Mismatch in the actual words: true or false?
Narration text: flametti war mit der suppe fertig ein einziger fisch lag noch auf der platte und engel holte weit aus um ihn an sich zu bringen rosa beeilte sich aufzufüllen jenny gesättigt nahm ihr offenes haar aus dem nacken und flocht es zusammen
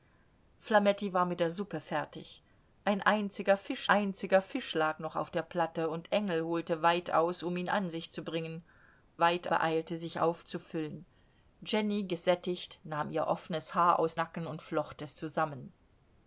true